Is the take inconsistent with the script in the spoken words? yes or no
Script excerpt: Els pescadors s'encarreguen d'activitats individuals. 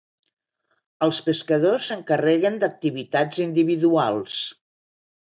no